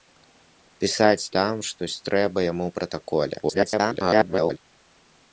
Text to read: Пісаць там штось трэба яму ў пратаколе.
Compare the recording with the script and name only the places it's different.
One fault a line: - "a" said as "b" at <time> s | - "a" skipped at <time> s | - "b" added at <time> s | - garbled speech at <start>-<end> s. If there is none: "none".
- garbled speech at 3.4-4.6 s